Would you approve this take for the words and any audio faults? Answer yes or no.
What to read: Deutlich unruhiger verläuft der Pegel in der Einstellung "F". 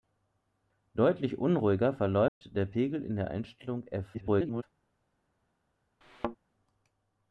no